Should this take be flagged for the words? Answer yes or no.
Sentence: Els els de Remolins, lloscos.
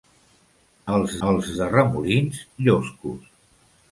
no